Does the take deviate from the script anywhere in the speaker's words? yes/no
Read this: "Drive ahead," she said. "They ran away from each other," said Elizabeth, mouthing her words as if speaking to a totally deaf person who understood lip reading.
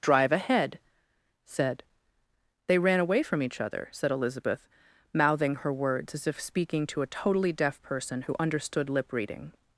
yes